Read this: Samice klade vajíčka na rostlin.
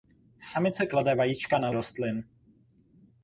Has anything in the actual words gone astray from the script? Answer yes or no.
no